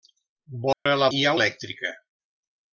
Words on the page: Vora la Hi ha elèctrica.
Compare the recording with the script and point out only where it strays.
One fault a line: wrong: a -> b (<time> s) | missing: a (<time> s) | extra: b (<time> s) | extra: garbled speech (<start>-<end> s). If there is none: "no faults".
no faults